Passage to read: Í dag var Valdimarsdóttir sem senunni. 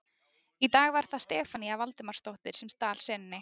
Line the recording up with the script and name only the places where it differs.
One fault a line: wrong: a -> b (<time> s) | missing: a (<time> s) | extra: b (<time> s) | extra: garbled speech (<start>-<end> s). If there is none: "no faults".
extra: það Stefanía (1.1 s)
extra: stal (2.8 s)